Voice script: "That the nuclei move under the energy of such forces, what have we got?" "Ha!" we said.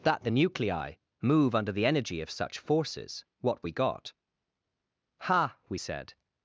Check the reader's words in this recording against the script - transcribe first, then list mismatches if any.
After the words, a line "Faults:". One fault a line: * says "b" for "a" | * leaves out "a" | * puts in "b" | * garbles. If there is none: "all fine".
"That the nuclei move under the energy of such forces, what we got?" "Ha!" we said.
Faults:
* leaves out "have"